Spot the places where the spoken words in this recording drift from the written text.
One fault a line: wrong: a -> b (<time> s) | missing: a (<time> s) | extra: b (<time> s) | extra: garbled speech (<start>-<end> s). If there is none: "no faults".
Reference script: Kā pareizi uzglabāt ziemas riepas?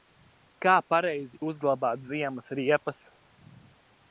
no faults